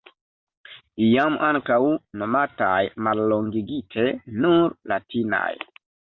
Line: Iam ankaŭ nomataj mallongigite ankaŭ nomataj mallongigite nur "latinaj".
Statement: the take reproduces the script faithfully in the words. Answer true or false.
false